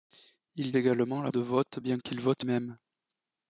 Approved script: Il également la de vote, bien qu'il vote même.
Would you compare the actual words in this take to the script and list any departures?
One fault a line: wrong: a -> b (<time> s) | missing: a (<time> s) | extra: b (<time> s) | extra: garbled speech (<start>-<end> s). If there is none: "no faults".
no faults